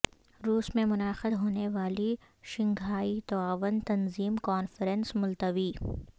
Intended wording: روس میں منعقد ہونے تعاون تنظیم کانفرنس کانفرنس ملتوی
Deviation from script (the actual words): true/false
true